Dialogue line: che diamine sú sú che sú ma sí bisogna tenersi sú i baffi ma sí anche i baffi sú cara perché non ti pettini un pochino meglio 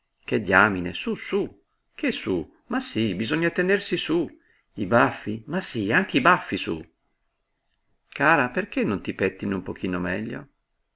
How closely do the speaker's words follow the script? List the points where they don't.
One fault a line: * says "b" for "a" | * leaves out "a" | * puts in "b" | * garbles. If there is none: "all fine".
all fine